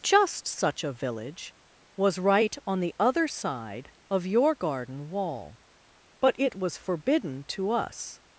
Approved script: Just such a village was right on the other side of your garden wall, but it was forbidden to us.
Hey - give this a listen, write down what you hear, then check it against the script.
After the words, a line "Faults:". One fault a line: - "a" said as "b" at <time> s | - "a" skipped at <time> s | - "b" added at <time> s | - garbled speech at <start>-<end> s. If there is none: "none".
Just such a village was right on the other side of your garden wall, but it was forbidden to us.
Faults:
none